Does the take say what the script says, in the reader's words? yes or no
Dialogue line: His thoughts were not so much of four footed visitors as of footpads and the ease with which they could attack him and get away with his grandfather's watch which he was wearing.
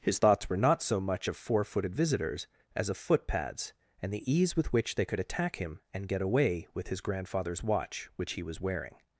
yes